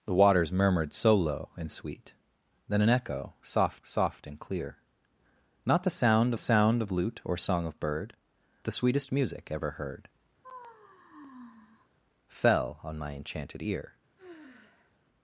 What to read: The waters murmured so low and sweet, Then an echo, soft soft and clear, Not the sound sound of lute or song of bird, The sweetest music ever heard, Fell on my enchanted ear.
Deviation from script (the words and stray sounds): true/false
true